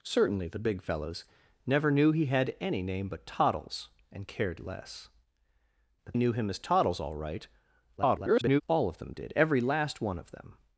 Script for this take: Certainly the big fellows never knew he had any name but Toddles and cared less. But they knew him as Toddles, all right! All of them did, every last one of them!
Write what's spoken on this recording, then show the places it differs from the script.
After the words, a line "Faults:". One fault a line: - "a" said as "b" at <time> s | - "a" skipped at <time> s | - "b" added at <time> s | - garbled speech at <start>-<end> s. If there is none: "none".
Certainly the big fellows never knew he had any name but Toddles and cared less. But knew him as Toddles, all right! [garbled] All of them did, every last one of them!
Faults:
- "they" skipped at 6.2 s
- garbled speech at 8.0-8.6 s